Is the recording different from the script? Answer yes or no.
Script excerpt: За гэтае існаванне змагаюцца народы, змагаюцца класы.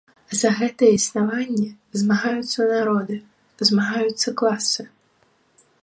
no